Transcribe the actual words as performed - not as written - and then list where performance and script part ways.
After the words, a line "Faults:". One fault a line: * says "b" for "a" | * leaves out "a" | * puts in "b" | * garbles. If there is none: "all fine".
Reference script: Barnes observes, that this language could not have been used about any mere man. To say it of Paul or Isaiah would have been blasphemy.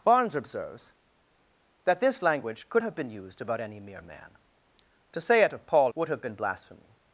Barnes observes, that this language could have been used about any mere man. To say it of Paul would have been blasphemy.
Faults:
* leaves out "not"
* leaves out "or Isaiah"